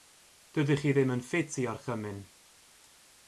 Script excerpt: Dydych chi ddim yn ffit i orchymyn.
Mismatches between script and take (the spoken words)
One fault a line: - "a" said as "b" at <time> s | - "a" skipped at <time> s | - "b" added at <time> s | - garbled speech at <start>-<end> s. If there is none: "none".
none